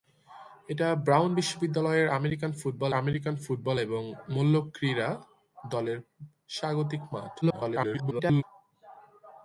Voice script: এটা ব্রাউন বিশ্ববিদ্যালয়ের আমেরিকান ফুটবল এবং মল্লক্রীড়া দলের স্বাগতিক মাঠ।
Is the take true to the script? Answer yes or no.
no